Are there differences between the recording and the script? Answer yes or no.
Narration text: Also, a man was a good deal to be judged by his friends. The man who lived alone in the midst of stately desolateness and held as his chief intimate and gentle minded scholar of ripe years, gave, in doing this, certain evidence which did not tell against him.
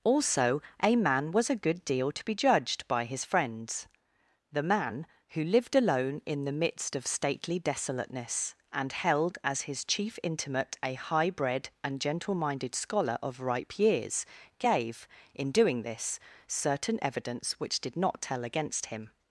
yes